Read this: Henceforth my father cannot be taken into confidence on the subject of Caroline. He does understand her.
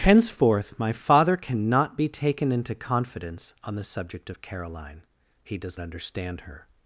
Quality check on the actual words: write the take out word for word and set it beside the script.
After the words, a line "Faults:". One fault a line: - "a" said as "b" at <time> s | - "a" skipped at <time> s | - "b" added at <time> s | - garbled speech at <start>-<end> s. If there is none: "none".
Henceforth my father cannot be taken into confidence on the subject of Caroline. He does understand her.
Faults:
none